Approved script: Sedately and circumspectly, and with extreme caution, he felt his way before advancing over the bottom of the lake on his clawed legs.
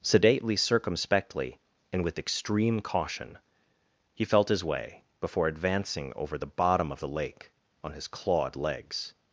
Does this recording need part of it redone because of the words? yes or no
yes